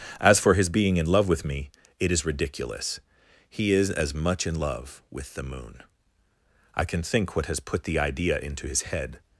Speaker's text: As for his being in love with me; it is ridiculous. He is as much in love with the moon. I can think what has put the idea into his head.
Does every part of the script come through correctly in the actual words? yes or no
yes